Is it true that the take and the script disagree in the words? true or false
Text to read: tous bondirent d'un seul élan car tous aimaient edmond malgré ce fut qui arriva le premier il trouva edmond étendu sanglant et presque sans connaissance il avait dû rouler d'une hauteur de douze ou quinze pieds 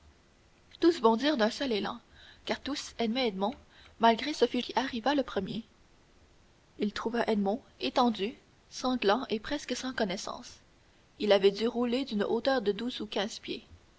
false